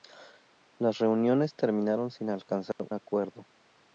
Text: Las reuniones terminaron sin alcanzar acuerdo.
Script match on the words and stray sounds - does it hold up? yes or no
no